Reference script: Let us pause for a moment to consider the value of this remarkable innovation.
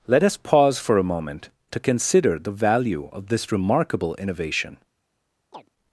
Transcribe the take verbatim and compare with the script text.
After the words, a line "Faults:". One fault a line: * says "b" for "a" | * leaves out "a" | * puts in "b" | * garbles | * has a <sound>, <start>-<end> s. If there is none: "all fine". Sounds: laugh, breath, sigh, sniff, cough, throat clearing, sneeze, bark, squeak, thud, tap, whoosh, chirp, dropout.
Let us pause for a moment to consider the value of this remarkable innovation.
Faults:
* has a chirp, 5.5-5.7 s